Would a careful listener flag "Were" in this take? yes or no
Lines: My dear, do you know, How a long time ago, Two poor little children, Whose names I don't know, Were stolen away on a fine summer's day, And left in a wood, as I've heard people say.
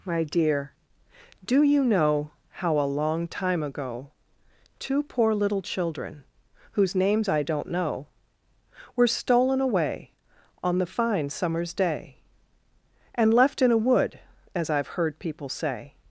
no